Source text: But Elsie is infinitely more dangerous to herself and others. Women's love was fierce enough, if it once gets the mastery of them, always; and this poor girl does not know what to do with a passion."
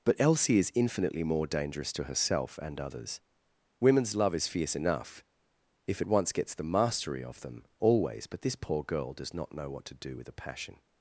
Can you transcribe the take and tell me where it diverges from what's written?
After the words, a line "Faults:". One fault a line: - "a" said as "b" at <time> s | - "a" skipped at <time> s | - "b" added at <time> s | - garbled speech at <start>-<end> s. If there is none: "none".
But Elsie is infinitely more dangerous to herself and others. Women's love is fierce enough, if it once gets the mastery of them, always; but this poor girl does not know what to do with a passion."
Faults:
- "was" said as "is" at 4.3 s
- "and" said as "but" at 8.3 s